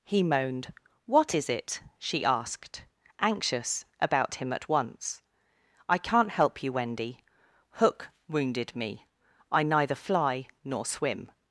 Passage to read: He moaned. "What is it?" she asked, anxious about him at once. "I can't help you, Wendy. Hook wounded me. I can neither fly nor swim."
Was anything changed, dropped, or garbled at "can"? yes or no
yes